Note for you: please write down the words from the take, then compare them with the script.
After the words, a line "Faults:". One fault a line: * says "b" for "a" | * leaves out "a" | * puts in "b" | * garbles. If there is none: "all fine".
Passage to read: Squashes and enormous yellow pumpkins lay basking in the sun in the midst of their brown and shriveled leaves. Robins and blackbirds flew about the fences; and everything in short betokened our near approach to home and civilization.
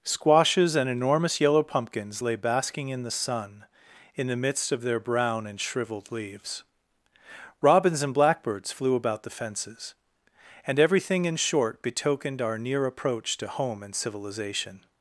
Squashes and enormous yellow pumpkins lay basking in the sun in the midst of their brown and shriveled leaves. Robins and blackbirds flew about the fences; and everything in short betokened our near approach to home and civilization.
Faults:
all fine